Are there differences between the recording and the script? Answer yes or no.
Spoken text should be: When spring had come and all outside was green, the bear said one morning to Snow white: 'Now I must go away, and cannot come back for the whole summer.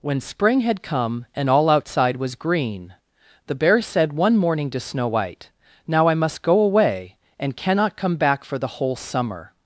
no